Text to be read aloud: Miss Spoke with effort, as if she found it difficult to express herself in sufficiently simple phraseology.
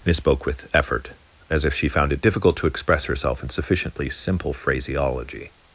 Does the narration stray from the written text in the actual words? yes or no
no